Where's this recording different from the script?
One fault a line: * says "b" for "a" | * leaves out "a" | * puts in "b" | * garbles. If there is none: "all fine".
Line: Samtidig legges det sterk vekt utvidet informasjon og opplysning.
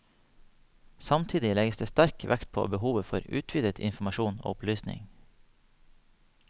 * puts in "på behovet for"